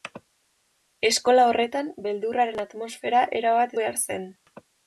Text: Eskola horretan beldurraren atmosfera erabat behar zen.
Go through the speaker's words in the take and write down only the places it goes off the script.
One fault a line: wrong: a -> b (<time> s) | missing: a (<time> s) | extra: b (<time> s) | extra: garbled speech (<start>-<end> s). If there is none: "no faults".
no faults